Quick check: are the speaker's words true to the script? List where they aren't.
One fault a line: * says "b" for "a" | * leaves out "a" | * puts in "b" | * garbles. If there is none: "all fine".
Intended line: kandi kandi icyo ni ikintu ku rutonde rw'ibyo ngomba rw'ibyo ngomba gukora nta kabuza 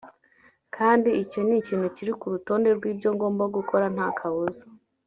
* leaves out "kandi"
* puts in "kiri"
* leaves out "rw'ibyo ngomba"